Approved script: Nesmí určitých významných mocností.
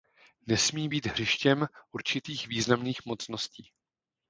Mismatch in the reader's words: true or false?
true